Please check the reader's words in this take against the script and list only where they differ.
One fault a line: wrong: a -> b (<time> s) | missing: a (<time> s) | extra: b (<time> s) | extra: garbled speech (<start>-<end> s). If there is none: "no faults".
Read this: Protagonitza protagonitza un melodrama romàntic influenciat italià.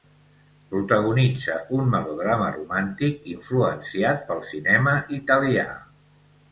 missing: protagonitza (1.6 s)
extra: pel cinema (4.3 s)